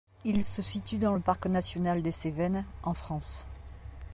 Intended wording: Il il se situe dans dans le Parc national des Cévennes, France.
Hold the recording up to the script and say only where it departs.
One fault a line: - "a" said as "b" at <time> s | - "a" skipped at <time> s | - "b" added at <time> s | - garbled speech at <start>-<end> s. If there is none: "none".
- "il" skipped at 0.4 s
- "dans" skipped at 1.1 s
- "en" added at 2.8 s